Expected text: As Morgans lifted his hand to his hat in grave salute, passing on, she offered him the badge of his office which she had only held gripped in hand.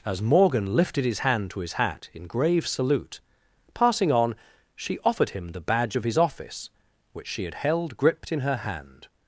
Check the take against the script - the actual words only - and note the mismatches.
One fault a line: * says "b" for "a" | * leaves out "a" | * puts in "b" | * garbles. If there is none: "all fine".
* says "Morgan" for "Morgans"
* leaves out "only"
* puts in "her"